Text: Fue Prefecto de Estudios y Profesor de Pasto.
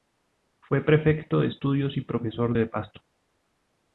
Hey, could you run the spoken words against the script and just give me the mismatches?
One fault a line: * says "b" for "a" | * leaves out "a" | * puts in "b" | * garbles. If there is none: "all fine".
all fine